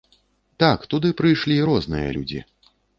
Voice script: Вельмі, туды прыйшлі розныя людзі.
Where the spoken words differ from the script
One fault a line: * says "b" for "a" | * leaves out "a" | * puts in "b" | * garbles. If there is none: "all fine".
* says "Так" for "Вельмі"